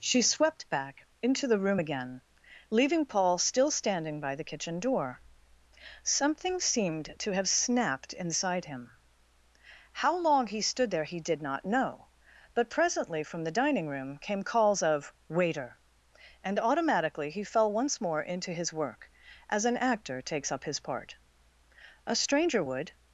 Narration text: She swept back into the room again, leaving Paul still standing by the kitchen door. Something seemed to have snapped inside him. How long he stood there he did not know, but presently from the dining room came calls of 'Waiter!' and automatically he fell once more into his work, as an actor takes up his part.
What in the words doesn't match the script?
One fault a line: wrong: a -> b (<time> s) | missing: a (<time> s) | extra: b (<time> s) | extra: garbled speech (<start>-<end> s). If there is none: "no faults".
extra: A stranger would (22.0 s)